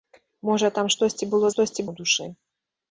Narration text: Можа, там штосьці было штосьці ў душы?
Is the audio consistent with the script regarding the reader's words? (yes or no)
yes